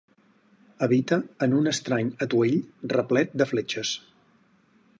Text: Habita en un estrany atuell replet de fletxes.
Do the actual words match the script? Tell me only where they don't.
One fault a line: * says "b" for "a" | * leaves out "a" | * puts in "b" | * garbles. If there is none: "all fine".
all fine